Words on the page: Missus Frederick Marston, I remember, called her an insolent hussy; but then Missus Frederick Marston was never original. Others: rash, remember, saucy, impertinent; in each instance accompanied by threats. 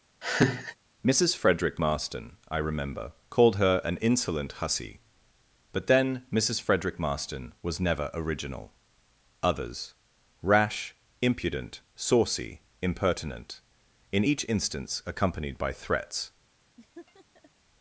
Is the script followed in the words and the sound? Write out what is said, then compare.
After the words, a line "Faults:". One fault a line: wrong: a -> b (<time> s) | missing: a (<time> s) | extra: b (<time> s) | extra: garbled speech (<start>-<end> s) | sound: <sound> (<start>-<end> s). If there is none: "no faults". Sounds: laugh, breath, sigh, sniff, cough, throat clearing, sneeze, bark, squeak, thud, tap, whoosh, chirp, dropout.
Missus Frederick Marston, I remember, called her an insolent hussy; but then Missus Frederick Marston was never original. Others: rash, impudent, saucy, impertinent; in each instance accompanied by threats.
Faults:
sound: laugh (0.2-0.8 s)
wrong: remember -> impudent (11.2 s)
sound: laugh (16.8-17.5 s)